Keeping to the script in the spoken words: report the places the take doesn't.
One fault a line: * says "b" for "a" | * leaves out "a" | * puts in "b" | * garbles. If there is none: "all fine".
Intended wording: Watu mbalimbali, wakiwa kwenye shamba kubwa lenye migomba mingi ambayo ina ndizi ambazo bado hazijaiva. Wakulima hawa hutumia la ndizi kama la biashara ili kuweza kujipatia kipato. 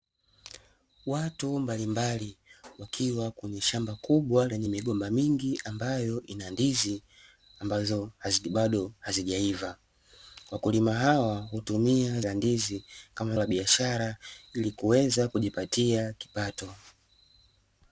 all fine